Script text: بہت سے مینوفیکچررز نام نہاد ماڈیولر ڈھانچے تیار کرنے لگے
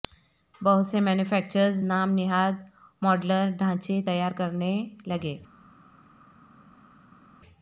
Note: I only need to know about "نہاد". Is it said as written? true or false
true